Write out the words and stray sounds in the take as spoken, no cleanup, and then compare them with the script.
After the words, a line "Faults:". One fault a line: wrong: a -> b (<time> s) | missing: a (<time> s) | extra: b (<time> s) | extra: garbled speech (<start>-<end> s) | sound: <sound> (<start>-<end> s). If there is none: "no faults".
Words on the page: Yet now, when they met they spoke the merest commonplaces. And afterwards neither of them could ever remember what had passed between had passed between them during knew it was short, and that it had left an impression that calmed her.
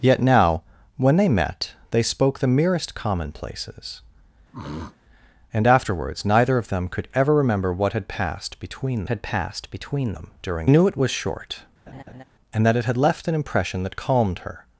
Yet now, when they met they spoke the merest commonplaces. And afterwards neither of them could ever remember what had passed between had passed between them during knew it was short, and that it had left an impression that calmed her.
Faults:
sound: throat clearing (4.5-5.0 s)
sound: laugh (11.9-12.2 s)